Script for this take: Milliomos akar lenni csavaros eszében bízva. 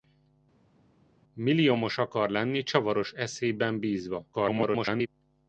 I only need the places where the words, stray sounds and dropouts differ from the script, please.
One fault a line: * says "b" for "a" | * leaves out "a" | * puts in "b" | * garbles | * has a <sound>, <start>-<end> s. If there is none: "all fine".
* garbles